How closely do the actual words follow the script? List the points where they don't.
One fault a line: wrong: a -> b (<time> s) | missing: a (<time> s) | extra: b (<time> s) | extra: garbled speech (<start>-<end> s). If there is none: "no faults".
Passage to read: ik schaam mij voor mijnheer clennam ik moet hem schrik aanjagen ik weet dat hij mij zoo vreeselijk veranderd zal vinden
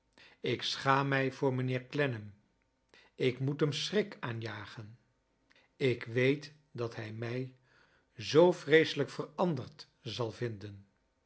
no faults